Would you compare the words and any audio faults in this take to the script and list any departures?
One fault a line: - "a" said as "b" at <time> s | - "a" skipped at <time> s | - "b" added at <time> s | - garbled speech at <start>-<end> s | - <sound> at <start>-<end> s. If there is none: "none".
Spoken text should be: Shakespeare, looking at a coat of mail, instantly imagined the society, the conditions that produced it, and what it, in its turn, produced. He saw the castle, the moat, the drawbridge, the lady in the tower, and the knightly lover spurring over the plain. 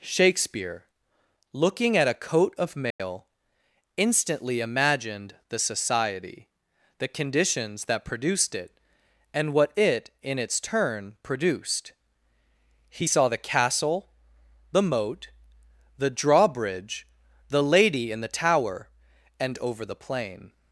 - dropout at 2.9-3.0 s
- "the knightly lover spurring" skipped at 19.6 s